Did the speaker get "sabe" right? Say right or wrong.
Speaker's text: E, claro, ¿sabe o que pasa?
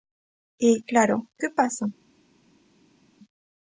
wrong